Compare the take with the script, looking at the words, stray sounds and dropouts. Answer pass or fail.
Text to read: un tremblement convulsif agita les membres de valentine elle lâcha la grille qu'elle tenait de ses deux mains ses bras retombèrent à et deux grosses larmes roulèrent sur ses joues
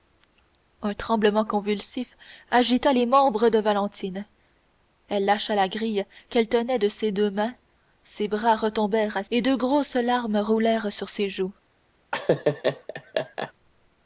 fail